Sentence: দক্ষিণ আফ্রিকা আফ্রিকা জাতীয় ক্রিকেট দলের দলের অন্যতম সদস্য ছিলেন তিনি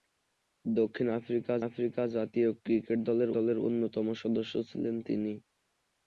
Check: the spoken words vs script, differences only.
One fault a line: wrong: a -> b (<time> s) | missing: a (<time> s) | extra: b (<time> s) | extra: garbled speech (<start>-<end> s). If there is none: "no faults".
no faults